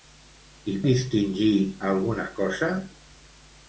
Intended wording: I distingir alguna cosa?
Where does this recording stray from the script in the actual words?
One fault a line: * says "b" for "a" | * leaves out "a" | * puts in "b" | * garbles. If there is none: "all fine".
all fine